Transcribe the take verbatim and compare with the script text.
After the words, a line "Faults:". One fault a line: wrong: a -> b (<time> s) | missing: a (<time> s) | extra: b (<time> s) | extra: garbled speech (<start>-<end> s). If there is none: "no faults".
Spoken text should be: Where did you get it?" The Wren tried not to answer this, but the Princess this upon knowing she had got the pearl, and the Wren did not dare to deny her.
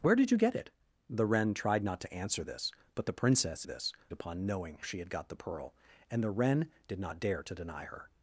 Where did you get it?" The Wren tried not to answer this, but the Princess this upon knowing she had got the pearl, and the Wren did not dare to deny her.
Faults:
no faults